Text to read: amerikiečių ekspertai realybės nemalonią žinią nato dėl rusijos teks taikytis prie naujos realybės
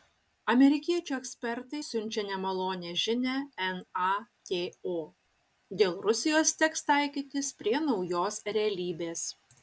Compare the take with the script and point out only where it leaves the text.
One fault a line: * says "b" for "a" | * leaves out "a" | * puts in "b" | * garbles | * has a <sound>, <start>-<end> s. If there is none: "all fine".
* says "siunčia" for "realybės"